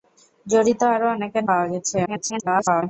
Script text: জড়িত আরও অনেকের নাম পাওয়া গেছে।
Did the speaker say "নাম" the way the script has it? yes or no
no